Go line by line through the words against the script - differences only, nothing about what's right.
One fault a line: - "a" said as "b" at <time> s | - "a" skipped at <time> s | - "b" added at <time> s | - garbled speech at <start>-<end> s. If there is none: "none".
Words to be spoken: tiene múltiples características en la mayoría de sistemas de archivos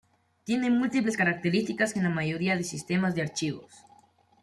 none